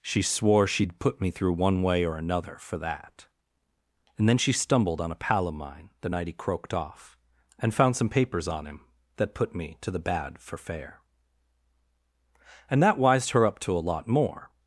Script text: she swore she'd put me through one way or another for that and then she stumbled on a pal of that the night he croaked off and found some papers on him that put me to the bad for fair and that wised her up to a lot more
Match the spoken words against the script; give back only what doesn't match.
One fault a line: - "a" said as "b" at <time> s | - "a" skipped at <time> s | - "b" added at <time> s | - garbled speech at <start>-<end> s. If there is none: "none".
- "that" said as "mine" at 5.5 s